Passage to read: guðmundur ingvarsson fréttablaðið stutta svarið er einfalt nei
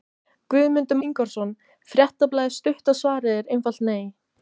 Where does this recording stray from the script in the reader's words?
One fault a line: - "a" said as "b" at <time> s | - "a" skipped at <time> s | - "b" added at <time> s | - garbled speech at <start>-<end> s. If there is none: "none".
none